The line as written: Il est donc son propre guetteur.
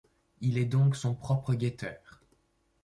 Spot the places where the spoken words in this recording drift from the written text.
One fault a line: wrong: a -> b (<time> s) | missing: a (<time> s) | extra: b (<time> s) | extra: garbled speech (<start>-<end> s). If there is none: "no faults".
no faults